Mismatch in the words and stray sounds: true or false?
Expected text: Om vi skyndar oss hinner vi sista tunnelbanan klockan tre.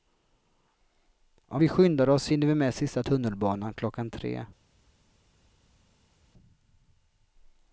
true